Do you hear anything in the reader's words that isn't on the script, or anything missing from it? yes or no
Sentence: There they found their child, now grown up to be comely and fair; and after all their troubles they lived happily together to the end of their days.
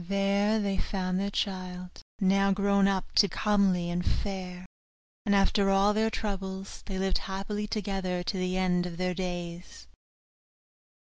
yes